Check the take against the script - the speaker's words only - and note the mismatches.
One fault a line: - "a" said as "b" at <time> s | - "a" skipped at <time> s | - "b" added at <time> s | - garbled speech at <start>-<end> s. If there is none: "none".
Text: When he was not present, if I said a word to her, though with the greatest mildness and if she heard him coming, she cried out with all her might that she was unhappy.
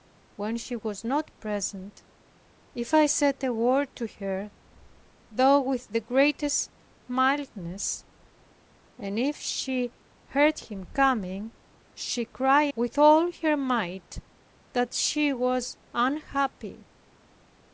- "out" skipped at 12.7 s